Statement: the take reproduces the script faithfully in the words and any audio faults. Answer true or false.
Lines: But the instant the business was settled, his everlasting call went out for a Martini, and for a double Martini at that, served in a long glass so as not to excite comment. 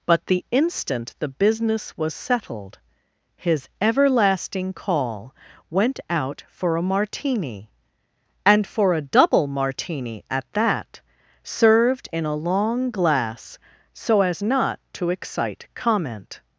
true